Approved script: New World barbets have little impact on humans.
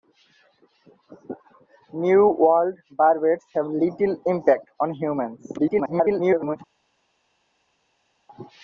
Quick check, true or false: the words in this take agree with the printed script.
false